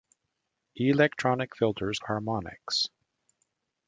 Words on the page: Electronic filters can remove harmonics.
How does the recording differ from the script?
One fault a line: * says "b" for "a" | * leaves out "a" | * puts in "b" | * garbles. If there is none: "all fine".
* leaves out "can remove"